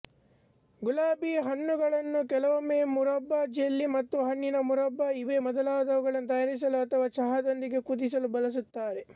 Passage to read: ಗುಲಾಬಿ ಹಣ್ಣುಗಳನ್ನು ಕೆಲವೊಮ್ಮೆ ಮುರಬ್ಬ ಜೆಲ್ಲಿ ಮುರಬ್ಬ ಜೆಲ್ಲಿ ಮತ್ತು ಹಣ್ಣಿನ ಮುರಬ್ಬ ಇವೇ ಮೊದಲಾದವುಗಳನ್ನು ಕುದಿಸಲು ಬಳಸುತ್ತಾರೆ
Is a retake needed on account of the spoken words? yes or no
yes